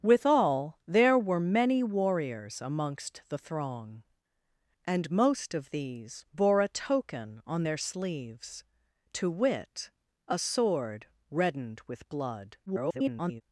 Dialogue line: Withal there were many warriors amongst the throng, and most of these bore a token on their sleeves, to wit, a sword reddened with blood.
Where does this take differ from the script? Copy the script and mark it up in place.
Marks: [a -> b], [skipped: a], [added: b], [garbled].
Withal there were many warriors amongst the throng, and most of these bore a token on their sleeves, to wit, a sword reddened with blood. [garbled]